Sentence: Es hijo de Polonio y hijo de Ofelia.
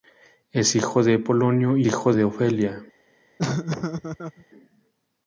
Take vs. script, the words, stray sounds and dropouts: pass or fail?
fail